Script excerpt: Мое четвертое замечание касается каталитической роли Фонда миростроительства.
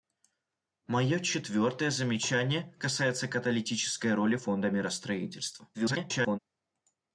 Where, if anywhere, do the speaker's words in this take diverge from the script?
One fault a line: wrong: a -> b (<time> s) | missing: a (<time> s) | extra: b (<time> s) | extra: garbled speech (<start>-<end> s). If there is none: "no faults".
extra: garbled speech (5.7-6.4 s)